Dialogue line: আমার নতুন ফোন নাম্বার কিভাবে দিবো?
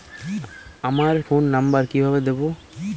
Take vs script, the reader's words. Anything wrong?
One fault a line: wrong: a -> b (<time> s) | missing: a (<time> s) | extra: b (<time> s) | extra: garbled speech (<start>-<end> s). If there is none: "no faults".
missing: নতুন (1.1 s)